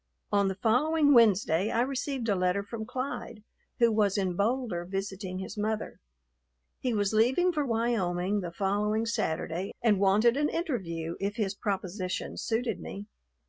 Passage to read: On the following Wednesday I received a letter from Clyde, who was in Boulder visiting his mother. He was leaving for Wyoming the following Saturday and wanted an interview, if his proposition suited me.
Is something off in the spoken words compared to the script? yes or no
no